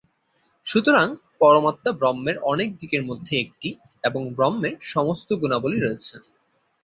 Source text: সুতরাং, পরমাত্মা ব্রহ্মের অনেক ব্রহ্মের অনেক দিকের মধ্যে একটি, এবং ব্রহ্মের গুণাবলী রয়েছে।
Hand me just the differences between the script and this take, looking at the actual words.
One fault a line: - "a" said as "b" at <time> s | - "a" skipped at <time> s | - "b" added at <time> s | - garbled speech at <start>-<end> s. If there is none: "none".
- "ব্রহ্মের অনেক" skipped at 2.7 s
- "সমস্ত" added at 4.9 s